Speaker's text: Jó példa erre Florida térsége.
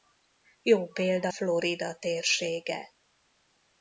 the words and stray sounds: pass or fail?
fail